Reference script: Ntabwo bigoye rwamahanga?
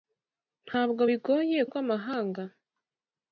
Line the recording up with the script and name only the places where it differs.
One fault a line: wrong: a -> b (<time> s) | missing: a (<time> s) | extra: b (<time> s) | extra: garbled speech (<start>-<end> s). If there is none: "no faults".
no faults